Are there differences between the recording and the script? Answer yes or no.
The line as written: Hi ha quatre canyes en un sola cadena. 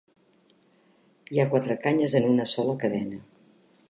yes